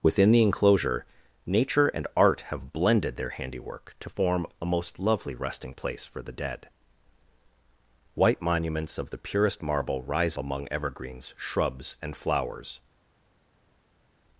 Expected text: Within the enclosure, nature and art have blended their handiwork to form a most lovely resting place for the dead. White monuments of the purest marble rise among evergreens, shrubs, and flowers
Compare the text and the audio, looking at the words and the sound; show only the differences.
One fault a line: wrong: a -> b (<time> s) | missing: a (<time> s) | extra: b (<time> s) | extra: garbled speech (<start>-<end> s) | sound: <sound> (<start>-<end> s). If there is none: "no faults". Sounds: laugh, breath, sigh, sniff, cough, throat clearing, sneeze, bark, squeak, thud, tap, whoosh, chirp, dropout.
no faults